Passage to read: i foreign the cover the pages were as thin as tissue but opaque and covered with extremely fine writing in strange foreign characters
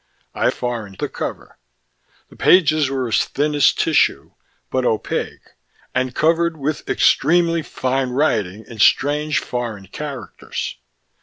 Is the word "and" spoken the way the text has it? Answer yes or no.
yes